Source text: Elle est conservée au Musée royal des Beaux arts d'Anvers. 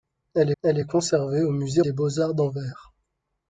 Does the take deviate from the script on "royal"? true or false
true